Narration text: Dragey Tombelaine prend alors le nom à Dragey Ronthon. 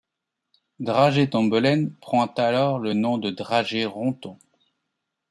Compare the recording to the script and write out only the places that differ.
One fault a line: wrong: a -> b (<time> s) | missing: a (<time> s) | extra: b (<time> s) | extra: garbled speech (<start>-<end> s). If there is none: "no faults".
wrong: à -> de (3.2 s)